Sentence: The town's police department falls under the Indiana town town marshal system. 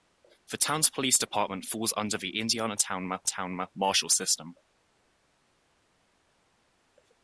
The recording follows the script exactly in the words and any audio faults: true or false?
true